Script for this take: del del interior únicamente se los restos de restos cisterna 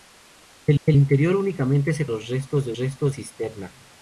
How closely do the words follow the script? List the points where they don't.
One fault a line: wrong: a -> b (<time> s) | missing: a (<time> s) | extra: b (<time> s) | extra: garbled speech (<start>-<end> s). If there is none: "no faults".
no faults